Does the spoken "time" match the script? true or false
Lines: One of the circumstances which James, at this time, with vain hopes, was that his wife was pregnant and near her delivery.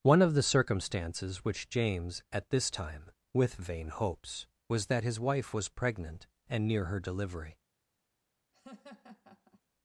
true